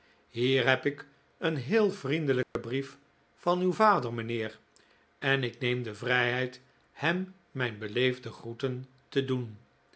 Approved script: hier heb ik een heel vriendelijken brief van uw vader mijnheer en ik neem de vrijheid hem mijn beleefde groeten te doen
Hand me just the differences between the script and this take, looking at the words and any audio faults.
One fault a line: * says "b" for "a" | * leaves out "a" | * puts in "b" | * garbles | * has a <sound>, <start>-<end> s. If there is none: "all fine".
* has a dropout, 2.4-2.6 s